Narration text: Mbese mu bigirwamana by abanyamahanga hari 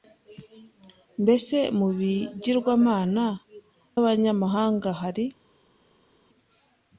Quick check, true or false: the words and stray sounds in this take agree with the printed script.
false